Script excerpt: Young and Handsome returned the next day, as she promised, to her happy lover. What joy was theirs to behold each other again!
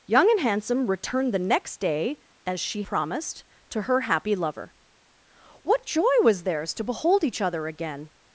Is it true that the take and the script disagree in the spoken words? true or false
false